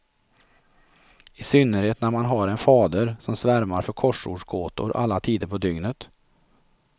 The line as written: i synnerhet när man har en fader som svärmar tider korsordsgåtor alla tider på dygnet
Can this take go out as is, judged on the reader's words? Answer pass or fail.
fail